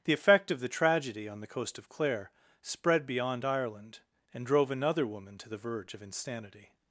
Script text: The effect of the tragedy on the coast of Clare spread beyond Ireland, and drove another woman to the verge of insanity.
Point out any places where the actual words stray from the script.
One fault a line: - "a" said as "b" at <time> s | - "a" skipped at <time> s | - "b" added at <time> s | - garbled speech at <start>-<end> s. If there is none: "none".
none